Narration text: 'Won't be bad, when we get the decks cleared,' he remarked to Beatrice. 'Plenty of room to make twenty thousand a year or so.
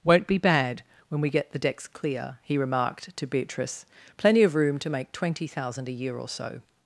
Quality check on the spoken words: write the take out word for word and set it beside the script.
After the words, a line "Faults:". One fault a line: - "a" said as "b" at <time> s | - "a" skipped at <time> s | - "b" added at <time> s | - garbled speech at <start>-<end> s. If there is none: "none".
'Won't be bad, when we get the decks clear,' he remarked to Beatrice. 'Plenty of room to make twenty thousand a year or so.
Faults:
- "cleared" said as "clear" at 1.9 s